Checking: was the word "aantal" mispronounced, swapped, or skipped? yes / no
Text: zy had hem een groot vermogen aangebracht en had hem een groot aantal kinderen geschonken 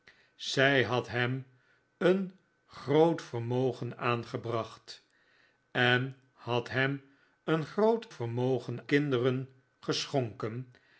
yes